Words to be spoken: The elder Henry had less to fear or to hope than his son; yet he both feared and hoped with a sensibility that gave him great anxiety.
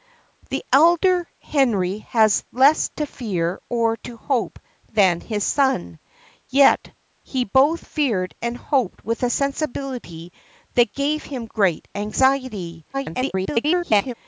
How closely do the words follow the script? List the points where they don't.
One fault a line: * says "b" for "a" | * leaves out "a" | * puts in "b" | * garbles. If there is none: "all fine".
* garbles